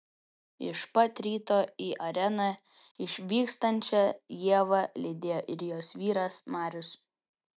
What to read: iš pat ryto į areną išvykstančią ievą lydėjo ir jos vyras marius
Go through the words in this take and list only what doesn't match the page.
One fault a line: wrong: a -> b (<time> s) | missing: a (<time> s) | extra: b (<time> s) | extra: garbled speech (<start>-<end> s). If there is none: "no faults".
no faults